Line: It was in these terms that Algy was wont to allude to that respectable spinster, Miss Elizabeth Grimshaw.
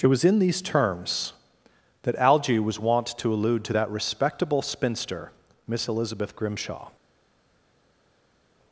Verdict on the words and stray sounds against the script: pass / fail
pass